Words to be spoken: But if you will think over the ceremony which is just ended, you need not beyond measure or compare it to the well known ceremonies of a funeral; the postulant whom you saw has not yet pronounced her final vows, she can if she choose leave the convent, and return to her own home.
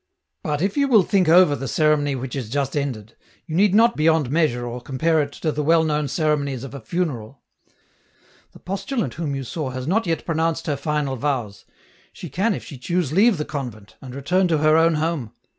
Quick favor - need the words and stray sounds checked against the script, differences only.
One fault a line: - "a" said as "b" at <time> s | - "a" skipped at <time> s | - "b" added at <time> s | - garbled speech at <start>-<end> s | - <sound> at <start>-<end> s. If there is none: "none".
none